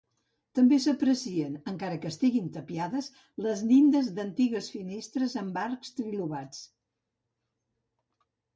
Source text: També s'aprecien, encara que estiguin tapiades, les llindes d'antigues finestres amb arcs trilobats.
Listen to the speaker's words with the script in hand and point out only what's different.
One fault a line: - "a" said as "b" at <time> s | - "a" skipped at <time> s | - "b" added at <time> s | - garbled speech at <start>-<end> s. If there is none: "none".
none